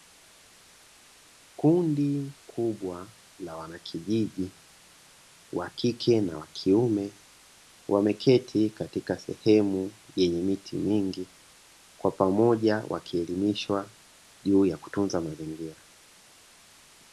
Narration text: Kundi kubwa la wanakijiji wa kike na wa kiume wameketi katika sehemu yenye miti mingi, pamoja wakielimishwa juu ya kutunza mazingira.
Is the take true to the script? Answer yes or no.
no